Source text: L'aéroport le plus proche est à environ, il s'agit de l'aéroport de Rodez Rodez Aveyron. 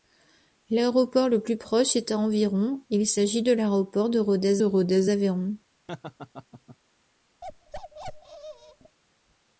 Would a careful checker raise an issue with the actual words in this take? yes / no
no